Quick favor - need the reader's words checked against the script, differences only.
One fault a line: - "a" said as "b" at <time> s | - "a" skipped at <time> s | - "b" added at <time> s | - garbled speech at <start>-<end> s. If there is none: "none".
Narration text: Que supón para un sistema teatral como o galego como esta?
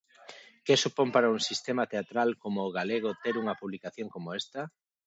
- "ter unha publicación" added at 3.2 s